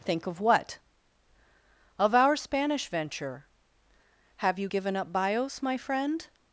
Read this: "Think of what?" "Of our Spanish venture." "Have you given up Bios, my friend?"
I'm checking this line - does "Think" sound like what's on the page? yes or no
yes